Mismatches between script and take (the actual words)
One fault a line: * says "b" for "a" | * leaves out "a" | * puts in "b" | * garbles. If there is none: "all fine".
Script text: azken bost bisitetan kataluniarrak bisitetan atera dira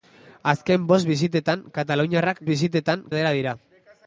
all fine